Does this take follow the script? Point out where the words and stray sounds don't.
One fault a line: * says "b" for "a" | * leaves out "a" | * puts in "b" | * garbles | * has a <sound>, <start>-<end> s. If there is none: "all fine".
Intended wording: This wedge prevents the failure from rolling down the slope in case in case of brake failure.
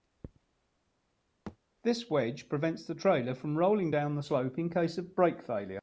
* has a thud, 1.5-1.6 s
* says "trailer" for "failure"
* leaves out "in case"